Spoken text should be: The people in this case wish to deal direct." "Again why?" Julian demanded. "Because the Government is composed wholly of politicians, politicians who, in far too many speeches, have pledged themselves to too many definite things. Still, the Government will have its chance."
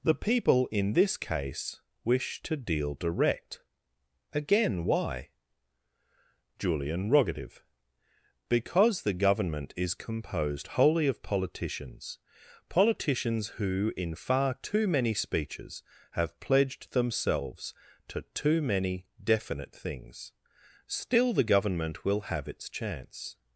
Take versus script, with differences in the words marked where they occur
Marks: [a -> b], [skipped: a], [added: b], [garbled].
The people in this case wish to deal direct." "Again why?" Julian [demanded. -> rogative] "Because the Government is composed wholly of politicians, politicians who, in far too many speeches, have pledged themselves to too many definite things. Still, the Government will have its chance."